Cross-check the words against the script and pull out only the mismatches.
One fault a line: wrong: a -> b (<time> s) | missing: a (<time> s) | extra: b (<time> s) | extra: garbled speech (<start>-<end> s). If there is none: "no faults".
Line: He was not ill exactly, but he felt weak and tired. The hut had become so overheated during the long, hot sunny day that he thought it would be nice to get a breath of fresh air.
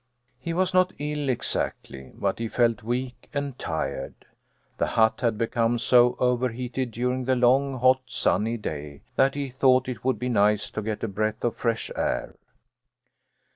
no faults